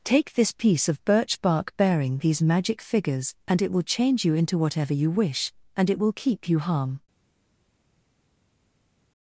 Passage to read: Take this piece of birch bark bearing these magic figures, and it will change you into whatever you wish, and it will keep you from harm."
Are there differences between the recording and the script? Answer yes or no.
yes